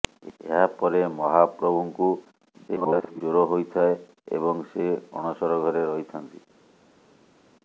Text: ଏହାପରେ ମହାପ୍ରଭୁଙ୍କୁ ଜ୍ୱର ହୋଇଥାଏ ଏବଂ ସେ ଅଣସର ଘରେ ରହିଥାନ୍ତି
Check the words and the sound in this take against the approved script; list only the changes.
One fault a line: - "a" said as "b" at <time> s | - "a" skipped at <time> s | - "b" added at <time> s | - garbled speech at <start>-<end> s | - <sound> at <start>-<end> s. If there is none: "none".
- garbled speech at 2.7-3.2 s